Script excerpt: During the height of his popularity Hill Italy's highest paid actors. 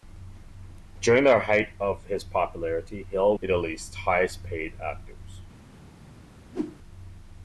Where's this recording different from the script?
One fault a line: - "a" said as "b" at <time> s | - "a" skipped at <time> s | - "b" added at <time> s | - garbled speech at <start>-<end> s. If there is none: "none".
none